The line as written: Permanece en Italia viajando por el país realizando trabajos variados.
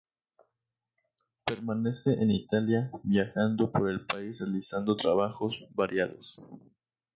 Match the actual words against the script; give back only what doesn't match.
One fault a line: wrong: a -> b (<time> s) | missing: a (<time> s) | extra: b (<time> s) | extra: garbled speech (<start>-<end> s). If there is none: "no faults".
no faults